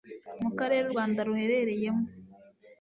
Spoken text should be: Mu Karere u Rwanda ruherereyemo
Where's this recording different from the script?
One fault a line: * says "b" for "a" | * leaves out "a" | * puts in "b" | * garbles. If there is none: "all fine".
all fine